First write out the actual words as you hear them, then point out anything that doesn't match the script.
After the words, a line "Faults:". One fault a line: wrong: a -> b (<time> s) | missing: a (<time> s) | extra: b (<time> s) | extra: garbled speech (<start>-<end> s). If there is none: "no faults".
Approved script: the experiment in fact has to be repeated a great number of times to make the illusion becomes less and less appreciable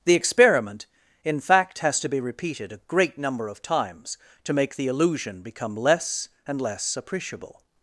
the experiment in fact has to be repeated a great number of times to make the illusion become less and less appreciable
Faults:
wrong: becomes -> become (5.4 s)